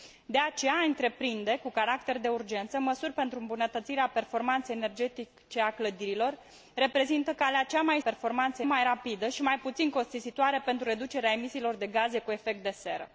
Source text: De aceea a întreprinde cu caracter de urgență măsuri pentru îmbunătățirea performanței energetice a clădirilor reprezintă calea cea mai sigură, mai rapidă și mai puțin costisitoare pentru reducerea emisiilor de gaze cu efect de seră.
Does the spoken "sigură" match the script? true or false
false